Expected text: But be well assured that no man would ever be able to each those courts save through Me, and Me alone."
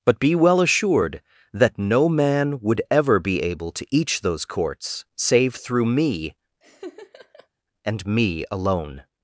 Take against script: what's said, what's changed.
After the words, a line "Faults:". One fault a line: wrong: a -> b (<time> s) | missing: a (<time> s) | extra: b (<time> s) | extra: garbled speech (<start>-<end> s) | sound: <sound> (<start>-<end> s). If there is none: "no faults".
But be well assured that no man would ever be able to each those courts save through Me, and Me alone."
Faults:
sound: laugh (6.6-7.5 s)